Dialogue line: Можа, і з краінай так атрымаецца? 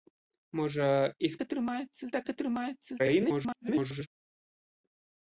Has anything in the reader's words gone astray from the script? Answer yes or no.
yes